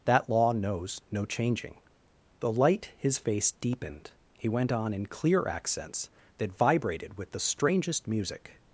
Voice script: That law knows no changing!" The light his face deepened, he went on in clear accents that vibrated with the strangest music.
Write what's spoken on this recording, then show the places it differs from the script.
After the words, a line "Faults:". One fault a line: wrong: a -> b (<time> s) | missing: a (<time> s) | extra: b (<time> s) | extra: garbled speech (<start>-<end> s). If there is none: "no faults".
That law knows no changing!" The light his face deepened, he went on in clear accents that vibrated with the strangest music.
Faults:
no faults